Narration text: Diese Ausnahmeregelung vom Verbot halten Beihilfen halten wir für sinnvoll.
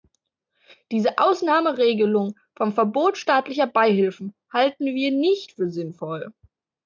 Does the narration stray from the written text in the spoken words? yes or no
yes